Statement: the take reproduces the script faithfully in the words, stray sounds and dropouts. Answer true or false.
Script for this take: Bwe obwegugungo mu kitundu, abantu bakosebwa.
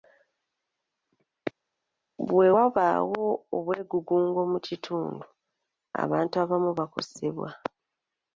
false